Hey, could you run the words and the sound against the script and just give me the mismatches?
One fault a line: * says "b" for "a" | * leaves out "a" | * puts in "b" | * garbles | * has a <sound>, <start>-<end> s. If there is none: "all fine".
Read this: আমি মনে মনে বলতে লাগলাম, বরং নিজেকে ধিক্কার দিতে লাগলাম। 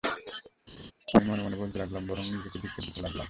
* has a laugh, 0.7-0.9 s